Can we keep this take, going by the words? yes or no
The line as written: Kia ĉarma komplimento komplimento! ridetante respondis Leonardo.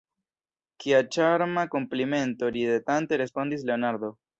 no